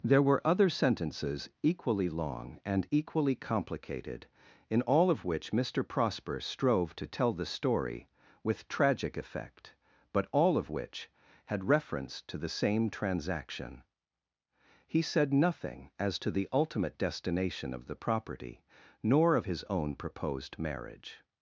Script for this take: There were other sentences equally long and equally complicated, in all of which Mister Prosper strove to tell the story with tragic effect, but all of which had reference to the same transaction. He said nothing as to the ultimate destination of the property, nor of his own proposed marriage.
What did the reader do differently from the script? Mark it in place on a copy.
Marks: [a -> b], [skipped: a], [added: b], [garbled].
There were other sentences equally long and equally complicated, in all of which Mister Prosper strove to tell the story with tragic effect, but all of which had reference to the same transaction. He said nothing as to the ultimate destination of the property, nor of his own proposed marriage.